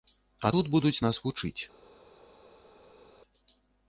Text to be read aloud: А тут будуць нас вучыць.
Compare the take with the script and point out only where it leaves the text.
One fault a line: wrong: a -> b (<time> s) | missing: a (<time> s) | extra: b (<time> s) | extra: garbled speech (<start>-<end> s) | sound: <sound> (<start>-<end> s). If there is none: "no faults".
no faults